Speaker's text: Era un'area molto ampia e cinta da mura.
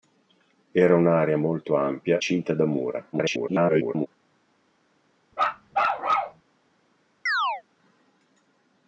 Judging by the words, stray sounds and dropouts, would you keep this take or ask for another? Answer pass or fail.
fail